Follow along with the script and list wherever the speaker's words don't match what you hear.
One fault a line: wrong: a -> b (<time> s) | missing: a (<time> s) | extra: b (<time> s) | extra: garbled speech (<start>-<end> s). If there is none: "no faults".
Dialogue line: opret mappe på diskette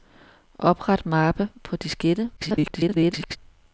extra: garbled speech (2.4-3.4 s)